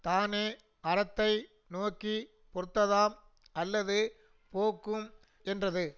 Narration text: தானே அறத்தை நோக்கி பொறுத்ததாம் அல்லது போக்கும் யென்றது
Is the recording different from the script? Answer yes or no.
no